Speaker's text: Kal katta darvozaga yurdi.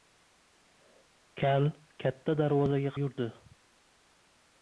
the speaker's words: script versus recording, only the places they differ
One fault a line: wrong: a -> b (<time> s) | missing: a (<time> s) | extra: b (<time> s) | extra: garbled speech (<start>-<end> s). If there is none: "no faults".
no faults